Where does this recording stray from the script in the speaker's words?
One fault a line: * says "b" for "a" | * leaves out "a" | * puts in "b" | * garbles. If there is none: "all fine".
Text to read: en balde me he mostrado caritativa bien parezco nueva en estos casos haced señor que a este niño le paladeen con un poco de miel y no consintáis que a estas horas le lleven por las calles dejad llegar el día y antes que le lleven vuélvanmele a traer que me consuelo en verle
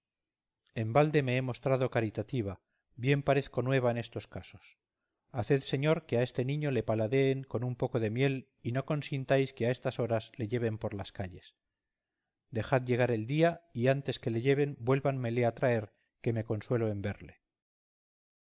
all fine